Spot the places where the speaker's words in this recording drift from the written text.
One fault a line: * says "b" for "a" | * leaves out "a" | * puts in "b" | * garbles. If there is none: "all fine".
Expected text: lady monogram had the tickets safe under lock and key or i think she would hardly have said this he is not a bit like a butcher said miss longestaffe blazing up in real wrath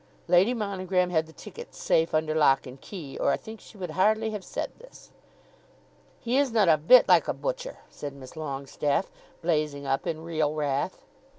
all fine